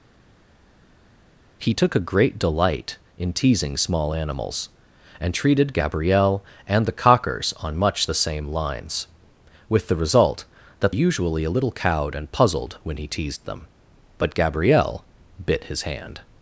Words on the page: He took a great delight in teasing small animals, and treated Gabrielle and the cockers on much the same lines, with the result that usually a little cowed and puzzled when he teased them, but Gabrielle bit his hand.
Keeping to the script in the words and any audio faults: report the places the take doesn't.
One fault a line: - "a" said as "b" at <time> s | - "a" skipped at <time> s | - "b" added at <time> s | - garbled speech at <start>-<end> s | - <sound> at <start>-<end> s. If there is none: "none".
none